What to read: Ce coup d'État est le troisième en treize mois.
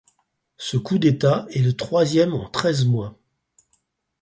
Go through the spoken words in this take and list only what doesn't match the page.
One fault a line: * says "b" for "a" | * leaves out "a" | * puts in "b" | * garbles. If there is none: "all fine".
all fine